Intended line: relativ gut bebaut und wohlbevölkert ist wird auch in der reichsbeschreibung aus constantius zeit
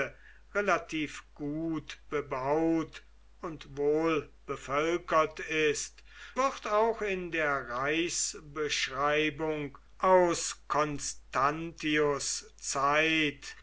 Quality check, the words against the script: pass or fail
pass